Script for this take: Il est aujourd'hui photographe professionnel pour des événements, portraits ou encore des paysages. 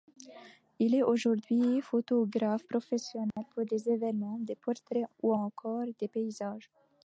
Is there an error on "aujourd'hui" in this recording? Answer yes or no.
no